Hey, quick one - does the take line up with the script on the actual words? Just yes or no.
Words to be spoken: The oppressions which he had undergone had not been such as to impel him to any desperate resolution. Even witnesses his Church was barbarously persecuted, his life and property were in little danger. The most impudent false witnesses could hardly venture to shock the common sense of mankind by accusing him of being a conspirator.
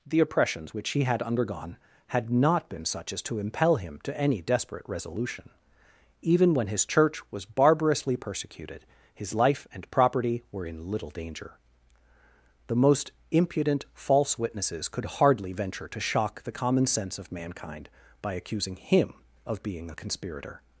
no